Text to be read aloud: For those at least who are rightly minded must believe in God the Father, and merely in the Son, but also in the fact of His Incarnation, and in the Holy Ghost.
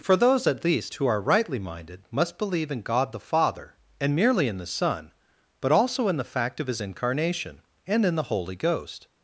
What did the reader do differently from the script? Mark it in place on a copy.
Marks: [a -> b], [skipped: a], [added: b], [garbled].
For those at least who are rightly minded must believe in God the Father, and merely in the Son, but also in the fact of His Incarnation, and in the Holy Ghost.